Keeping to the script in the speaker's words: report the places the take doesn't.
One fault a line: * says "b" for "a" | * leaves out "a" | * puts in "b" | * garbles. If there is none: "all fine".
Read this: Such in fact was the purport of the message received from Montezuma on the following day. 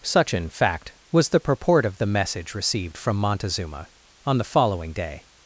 all fine